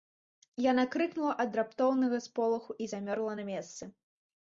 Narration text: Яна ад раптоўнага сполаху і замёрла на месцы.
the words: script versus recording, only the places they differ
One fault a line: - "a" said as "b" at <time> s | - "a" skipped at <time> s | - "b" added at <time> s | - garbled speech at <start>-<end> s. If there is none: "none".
- "крыкнула" added at 0.9 s